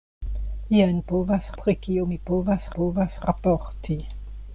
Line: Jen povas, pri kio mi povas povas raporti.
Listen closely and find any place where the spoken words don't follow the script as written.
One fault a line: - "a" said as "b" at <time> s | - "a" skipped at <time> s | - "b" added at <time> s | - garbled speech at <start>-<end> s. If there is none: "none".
none